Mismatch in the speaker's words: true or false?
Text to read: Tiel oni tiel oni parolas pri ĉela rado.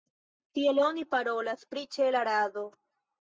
true